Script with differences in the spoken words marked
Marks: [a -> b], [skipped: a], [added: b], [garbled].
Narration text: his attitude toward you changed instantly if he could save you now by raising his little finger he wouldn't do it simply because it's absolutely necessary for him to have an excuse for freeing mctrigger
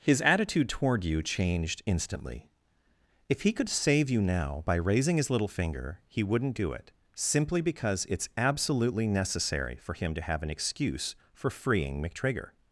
his attitude toward you changed instantly if he could save you now by raising his little finger he wouldn't do it simply because it's absolutely necessary for him to have an excuse for freeing mctrigger